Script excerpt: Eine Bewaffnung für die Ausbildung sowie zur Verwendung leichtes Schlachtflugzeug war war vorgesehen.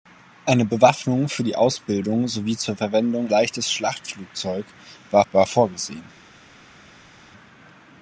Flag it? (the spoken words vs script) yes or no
no